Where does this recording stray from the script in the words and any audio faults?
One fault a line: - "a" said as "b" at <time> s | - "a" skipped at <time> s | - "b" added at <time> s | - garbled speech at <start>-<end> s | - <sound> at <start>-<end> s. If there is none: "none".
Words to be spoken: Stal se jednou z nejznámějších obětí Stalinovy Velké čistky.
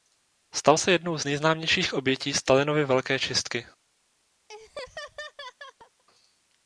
- laugh at 4.5-6.0 s